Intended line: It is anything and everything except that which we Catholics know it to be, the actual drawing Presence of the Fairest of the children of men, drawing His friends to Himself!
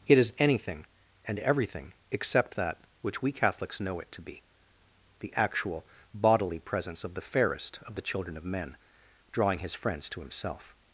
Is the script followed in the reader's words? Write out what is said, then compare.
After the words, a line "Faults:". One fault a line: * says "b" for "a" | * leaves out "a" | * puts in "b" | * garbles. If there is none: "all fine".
It is anything and everything except that which we Catholics know it to be, the actual bodily Presence of the Fairest of the children of men, drawing His friends to Himself!
Faults:
* says "bodily" for "drawing"